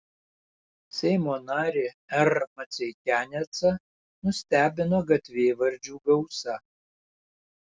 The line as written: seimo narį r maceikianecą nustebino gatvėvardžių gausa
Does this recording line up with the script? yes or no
yes